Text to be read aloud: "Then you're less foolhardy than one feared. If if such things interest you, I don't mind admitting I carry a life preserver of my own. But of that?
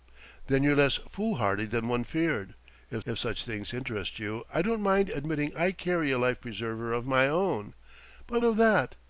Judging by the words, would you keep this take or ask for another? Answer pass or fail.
pass